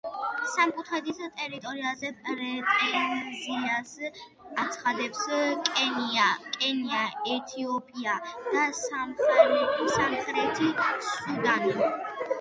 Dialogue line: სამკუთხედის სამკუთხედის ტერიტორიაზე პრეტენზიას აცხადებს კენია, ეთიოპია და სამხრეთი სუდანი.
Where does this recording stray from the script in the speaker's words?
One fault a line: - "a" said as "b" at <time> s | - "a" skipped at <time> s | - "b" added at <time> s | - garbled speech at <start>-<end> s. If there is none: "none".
- "სამკუთხედის" skipped at 1.2 s